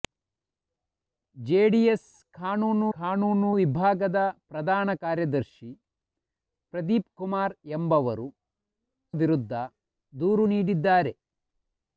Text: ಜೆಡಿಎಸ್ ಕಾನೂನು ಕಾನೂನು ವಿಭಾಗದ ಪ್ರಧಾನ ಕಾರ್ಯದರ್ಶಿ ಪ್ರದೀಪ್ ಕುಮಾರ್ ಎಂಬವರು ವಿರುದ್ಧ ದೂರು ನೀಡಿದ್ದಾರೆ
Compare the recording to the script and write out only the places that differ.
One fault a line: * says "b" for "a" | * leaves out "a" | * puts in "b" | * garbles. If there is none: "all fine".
all fine